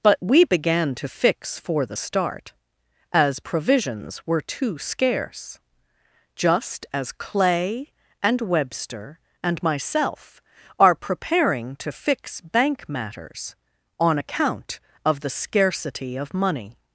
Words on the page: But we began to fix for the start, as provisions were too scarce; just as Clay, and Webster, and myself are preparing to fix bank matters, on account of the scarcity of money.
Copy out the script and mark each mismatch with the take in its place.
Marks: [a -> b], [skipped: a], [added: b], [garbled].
But we began to fix for the start, as provisions were too scarce; just as Clay, and Webster, and myself are preparing to fix bank matters, on account of the scarcity of money.